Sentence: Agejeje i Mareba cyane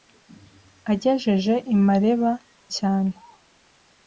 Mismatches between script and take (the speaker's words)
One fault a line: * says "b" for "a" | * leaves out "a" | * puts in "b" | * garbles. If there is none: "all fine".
all fine